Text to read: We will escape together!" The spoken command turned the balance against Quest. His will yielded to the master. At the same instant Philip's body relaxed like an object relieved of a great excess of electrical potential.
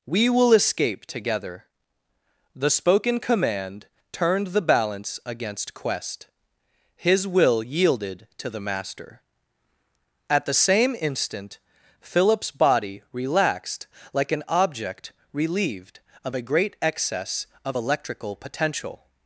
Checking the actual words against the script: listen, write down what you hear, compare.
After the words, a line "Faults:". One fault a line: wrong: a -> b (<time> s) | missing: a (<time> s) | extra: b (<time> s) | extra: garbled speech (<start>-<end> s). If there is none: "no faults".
We will escape together!" The spoken command turned the balance against Quest. His will yielded to the master. At the same instant Philip's body relaxed like an object relieved of a great excess of electrical potential.
Faults:
no faults